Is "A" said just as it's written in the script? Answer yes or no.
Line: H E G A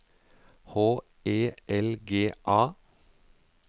yes